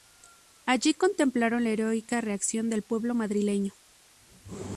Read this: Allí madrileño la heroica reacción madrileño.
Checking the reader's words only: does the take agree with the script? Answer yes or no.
no